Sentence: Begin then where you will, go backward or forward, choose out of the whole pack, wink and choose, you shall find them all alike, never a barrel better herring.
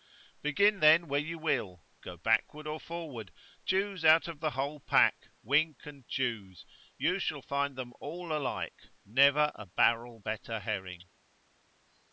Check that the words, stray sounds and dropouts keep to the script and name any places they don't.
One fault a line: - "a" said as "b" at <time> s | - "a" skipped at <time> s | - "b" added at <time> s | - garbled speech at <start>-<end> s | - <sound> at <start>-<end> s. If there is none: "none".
none